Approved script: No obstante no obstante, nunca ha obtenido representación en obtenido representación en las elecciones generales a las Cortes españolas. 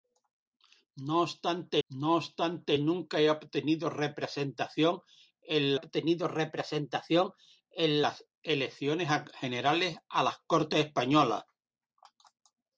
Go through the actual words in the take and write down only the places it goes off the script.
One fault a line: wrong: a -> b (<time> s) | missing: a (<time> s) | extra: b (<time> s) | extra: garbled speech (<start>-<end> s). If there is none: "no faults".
no faults